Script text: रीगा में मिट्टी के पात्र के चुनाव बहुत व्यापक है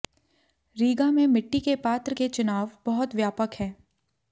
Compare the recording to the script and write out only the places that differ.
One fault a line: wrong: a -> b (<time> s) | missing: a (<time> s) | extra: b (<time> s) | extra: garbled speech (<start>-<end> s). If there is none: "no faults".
no faults